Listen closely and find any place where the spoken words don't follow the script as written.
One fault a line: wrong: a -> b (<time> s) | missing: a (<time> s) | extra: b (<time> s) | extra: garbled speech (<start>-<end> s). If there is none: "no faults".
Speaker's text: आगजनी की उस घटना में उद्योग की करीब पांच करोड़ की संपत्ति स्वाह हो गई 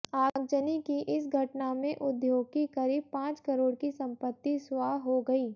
wrong: उस -> इस (1.1 s)